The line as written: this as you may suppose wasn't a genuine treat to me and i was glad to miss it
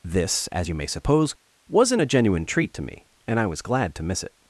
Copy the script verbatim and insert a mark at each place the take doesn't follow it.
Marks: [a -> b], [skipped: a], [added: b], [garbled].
this as you may suppose wasn't a genuine treat to me and i was glad to miss it